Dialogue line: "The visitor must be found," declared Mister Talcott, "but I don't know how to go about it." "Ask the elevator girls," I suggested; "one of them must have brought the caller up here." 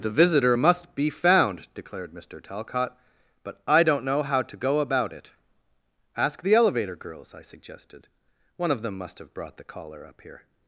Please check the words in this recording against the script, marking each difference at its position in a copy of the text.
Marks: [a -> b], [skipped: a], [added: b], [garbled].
"The visitor must be found," declared Mister Talcott, "but I don't know how to go about it." "Ask the elevator girls," I suggested; "one of them must have brought the caller up here."